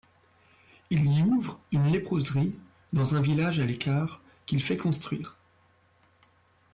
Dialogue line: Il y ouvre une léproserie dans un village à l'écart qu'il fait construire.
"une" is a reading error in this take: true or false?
false